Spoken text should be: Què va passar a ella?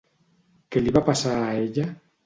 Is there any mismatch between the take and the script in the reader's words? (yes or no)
yes